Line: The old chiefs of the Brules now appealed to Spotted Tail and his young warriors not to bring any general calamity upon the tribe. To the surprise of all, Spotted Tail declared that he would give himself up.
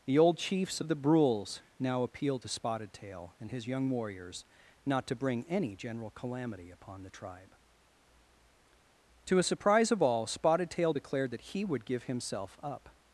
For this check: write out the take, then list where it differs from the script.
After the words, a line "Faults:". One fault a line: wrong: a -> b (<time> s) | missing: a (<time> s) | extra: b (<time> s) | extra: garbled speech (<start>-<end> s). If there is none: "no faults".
The old chiefs of the Brules now appealed to Spotted Tail and his young warriors not to bring any general calamity upon the tribe. To a surprise of all, Spotted Tail declared that he would give himself up.
Faults:
wrong: the -> a (9.4 s)